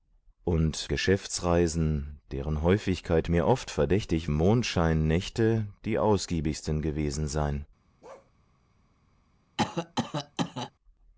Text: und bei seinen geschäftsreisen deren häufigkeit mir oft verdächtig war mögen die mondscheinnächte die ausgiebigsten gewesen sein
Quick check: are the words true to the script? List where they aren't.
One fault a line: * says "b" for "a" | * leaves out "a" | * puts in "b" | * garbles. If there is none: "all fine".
* leaves out "bei seinen"
* leaves out "war mögen die"